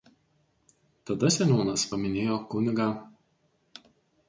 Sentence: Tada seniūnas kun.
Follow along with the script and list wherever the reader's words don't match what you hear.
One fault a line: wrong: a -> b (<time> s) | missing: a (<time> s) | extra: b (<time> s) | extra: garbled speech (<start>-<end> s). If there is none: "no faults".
extra: paminėjo (1.9 s)